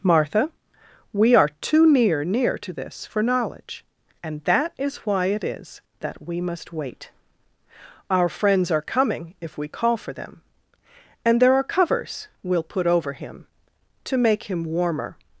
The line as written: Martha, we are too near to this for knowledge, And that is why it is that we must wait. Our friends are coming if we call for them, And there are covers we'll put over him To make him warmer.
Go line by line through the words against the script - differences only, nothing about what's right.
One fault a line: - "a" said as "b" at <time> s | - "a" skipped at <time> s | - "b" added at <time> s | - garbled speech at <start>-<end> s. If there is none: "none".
- "near" added at 2.2 s